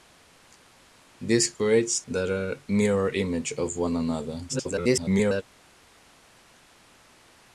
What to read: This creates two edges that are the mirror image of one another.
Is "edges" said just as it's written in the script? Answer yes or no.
no